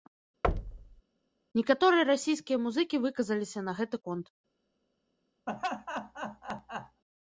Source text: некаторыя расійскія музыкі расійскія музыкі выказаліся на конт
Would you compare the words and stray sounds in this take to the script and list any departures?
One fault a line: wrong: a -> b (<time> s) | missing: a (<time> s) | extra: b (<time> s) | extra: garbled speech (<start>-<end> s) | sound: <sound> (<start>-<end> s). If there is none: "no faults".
sound: thud (0.4-1.0 s)
missing: расійскія музыкі (3.0 s)
extra: гэты (3.8 s)
sound: laugh (5.5-7.0 s)